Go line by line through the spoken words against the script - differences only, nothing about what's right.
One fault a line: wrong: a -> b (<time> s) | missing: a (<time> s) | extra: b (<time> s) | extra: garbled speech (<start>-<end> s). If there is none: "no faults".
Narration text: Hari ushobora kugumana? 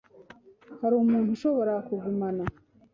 extra: umuntu (1.0 s)